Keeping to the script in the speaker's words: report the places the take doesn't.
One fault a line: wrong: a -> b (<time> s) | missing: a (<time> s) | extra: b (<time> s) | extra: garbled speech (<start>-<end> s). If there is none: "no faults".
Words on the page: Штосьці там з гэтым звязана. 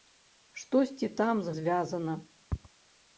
missing: гэтым (1.5 s)